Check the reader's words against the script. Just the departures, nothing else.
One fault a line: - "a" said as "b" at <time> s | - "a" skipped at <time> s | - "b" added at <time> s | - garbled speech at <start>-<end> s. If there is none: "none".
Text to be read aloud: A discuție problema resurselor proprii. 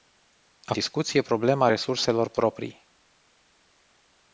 none